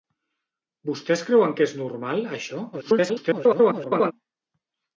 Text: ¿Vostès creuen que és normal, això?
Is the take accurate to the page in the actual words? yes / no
no